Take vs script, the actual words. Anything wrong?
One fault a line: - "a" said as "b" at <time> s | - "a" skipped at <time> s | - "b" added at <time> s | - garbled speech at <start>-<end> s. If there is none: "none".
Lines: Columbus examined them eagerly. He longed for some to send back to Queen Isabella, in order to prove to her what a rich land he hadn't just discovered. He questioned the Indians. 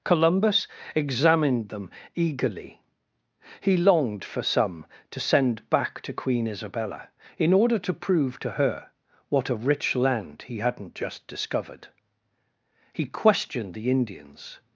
none